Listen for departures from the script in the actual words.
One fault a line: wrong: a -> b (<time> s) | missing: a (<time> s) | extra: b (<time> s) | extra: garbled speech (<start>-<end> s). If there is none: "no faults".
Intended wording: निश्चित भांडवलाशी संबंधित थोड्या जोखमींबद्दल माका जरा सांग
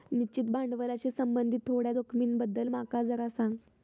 no faults